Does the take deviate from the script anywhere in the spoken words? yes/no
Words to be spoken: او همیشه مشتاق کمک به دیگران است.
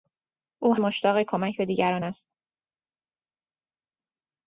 yes